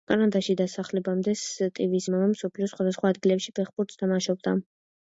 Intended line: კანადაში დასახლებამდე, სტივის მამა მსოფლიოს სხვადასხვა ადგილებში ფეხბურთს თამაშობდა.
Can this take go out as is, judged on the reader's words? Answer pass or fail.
pass